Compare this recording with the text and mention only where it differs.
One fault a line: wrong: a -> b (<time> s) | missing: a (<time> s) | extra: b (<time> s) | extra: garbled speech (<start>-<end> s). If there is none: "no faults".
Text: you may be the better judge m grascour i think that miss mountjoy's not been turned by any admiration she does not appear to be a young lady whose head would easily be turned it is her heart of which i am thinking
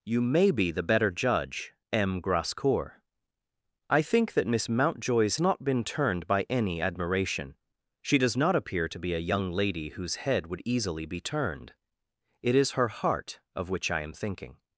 no faults